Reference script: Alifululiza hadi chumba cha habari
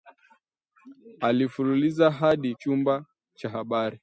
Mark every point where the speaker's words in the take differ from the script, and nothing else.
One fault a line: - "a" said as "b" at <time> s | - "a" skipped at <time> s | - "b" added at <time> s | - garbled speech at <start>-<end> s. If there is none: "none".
none